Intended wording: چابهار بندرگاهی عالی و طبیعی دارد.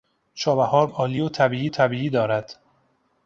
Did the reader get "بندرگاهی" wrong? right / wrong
wrong